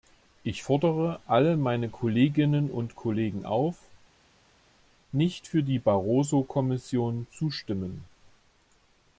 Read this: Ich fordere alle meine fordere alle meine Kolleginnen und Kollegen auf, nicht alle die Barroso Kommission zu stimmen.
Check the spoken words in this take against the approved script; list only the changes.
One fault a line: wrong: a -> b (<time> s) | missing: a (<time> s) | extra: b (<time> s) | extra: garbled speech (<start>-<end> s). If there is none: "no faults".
missing: fordere alle meine (1.9 s)
wrong: alle -> für (5.5 s)